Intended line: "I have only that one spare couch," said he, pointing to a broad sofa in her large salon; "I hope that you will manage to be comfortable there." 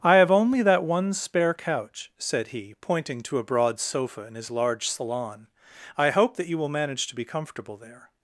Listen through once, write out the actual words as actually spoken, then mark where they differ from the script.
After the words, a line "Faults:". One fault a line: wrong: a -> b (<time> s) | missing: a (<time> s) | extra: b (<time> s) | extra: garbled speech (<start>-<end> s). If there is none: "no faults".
"I have only that one spare couch," said he, pointing to a broad sofa in his large salon; "I hope that you will manage to be comfortable there."
Faults:
wrong: her -> his (4.3 s)